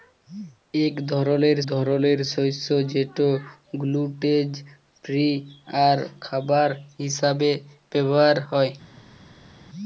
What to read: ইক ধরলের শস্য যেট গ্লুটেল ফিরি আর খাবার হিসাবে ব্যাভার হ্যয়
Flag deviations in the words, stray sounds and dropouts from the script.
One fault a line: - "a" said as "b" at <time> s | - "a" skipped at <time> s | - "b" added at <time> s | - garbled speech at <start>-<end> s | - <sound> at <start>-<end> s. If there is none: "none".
- "ধরলের" added at 1.7 s